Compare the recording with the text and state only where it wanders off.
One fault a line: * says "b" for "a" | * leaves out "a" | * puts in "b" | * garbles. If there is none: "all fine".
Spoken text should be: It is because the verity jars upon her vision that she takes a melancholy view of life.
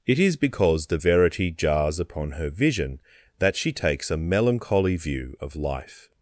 all fine